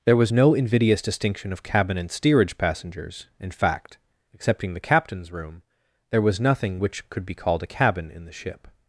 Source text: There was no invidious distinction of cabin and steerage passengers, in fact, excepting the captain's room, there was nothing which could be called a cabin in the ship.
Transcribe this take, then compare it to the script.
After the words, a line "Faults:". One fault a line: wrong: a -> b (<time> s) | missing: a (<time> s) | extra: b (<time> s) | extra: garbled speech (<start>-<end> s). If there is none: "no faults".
There was no invidious distinction of cabin and steerage passengers, in fact, excepting the captain's room, there was nothing which could be called a cabin in the ship.
Faults:
no faults